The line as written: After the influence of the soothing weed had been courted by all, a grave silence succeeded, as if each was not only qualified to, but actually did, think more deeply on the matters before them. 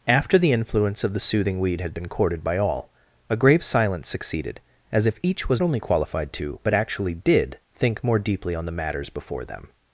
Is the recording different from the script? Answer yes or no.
yes